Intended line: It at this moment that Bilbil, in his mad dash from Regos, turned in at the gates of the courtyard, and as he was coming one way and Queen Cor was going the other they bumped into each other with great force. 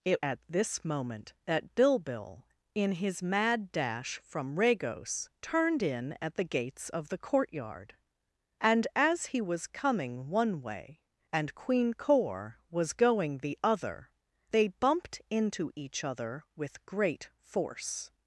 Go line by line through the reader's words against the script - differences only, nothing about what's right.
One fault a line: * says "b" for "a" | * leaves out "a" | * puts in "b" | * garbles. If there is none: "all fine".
all fine